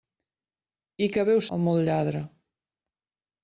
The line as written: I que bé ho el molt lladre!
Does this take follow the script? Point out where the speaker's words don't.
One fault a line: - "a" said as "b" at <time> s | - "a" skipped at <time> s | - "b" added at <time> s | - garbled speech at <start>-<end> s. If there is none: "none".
none